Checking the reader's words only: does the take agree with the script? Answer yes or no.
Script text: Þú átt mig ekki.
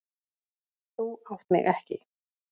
yes